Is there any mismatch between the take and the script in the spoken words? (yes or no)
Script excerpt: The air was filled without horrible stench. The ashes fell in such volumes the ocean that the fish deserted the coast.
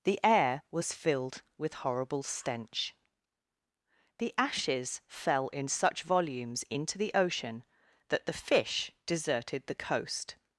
yes